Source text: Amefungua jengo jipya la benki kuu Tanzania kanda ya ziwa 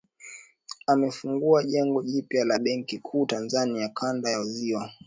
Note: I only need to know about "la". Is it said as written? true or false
true